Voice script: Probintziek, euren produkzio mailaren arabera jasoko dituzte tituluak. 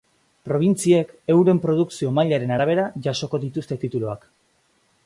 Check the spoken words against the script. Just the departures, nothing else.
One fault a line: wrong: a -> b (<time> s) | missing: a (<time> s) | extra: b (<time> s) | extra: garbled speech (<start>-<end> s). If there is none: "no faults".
no faults